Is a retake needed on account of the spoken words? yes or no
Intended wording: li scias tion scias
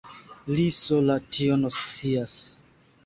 yes